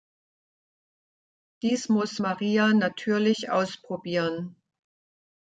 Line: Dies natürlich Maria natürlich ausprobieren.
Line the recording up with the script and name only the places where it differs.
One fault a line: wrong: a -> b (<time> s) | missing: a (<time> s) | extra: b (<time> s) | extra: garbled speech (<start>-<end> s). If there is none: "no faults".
wrong: natürlich -> muss (1.9 s)